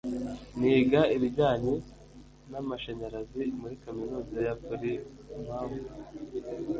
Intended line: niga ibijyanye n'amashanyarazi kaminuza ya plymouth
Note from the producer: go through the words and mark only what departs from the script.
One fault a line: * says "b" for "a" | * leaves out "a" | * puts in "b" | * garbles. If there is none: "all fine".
* puts in "muri"